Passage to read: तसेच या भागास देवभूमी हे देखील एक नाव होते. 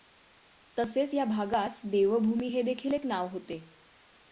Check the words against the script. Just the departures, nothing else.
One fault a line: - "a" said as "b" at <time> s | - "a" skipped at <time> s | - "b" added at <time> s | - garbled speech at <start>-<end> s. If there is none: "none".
none